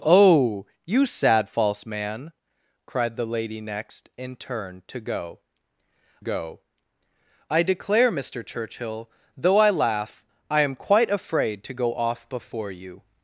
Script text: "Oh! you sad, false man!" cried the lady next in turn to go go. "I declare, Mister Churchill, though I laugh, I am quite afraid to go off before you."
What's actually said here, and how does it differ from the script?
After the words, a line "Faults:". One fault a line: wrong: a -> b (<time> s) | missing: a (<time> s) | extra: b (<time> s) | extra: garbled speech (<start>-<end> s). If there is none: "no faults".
"Oh! you sad, false man!" cried the lady next in turn to go go. "I declare, Mister Churchill, though I laugh, I am quite afraid to go off before you."
Faults:
no faults